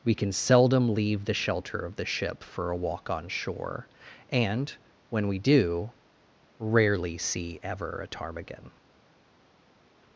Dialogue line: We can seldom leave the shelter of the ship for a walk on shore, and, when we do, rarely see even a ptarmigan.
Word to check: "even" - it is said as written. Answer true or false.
false